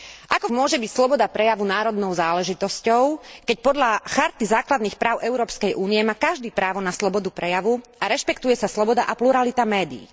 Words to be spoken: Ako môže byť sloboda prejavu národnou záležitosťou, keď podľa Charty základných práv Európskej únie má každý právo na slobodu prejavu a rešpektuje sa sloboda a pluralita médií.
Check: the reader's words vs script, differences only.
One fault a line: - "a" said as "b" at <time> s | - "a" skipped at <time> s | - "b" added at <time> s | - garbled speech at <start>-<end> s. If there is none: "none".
none